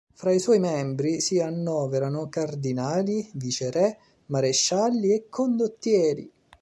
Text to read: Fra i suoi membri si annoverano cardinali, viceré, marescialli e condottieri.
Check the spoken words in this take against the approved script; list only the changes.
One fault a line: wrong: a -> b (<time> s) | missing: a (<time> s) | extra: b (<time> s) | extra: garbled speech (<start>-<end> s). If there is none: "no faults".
no faults